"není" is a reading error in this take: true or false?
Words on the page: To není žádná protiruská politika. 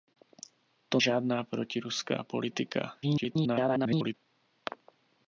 true